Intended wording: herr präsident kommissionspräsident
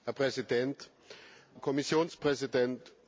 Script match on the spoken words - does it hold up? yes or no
yes